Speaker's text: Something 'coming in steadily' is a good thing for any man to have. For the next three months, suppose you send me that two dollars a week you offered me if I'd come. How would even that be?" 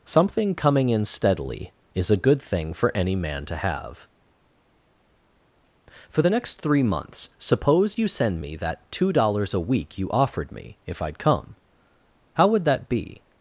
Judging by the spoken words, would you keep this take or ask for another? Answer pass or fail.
fail